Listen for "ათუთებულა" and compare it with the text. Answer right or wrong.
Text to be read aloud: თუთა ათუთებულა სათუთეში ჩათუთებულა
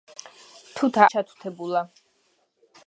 wrong